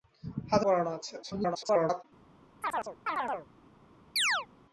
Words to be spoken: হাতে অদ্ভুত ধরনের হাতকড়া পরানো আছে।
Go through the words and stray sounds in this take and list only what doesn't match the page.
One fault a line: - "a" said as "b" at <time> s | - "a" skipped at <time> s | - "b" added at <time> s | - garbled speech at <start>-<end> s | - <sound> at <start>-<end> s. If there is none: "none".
- "অদ্ভুত ধরনের হাতকড়া" skipped at 0.7 s
- garbled speech at 1.2-2.0 s
- chirp at 2.6-3.5 s
- chirp at 4.2-4.5 s